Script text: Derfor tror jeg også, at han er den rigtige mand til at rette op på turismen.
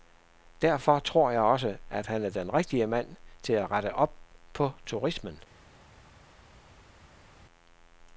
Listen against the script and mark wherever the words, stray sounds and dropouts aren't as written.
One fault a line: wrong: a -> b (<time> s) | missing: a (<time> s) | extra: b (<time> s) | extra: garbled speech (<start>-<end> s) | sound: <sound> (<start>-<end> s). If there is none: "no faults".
no faults